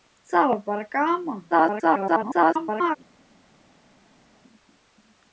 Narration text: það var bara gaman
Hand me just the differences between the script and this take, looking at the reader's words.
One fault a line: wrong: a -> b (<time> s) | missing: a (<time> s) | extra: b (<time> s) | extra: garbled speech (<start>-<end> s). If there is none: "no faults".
extra: garbled speech (1.5-3.0 s)